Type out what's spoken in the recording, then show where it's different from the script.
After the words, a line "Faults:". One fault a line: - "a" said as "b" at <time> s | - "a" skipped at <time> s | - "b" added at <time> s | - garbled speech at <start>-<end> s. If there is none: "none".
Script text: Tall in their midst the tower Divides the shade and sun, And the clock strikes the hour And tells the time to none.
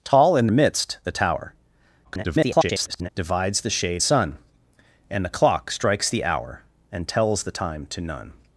Tall in midst the tower [garbled] Divides the shade sun, And the clock strikes the hour And tells the time to none.
Faults:
- "their" skipped at 0.5 s
- garbled speech at 2.0-3.1 s
- "and" skipped at 4.0 s